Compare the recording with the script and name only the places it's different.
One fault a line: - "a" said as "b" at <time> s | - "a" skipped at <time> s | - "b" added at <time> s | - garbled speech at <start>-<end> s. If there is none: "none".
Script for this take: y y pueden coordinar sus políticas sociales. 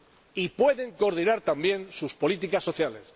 - "y" skipped at 0.5 s
- "también" added at 1.4 s